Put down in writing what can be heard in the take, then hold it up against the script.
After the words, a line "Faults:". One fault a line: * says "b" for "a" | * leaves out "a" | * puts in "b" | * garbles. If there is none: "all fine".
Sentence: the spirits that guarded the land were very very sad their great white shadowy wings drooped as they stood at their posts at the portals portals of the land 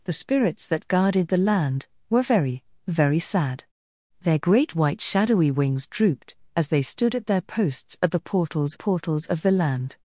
the spirits that guarded the land were very very sad their great white shadowy wings drooped as they stood at their posts at the portals portals of the land
Faults:
all fine